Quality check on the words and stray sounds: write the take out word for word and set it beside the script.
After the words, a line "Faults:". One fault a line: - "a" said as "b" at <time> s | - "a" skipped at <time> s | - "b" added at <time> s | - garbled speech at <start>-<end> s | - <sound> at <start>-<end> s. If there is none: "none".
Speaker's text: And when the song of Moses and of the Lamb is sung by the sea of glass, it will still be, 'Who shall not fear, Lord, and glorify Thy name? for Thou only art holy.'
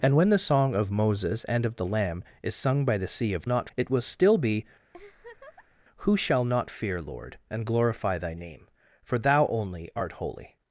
And when the song of Moses and of the Lamb is sung by the sea of not, it will still be, 'Who shall not fear, Lord, and glorify Thy name? for Thou only art holy.'
Faults:
- "glass" said as "not" at 3.4 s
- laugh at 4.9-5.8 s